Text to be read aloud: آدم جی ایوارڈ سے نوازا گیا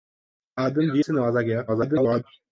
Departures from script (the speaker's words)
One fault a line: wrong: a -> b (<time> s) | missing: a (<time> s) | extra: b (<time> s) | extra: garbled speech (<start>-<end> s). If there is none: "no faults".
missing: ایوارڈ (1.0 s)
extra: garbled speech (1.7-2.2 s)